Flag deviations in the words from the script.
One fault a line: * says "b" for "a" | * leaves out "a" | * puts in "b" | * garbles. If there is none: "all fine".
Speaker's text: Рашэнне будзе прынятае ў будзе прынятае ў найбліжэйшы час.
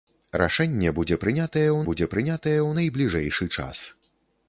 all fine